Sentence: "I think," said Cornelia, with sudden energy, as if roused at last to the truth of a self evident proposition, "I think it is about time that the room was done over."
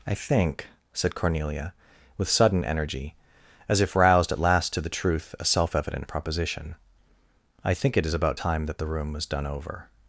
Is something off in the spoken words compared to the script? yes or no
yes